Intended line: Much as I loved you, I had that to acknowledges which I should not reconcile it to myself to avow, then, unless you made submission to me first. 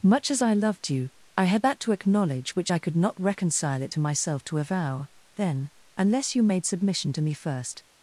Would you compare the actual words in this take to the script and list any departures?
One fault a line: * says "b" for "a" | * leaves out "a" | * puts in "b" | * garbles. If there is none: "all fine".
* says "acknowledge" for "acknowledges"
* says "could" for "should"